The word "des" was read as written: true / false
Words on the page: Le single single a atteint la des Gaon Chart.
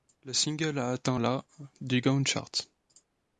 false